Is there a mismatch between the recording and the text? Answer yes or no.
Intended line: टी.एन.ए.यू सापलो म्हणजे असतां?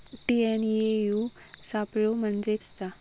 no